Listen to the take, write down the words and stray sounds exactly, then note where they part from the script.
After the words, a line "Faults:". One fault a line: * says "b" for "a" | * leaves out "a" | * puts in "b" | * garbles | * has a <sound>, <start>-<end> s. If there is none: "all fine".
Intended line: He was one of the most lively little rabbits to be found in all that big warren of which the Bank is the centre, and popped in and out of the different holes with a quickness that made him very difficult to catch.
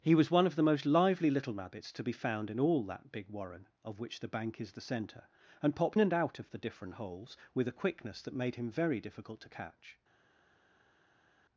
He was one of the most lively little rabbits to be found in all that big warren of which the Bank is the centre, and popped and out of the different holes with a quickness that made him very difficult to catch.
Faults:
* leaves out "in"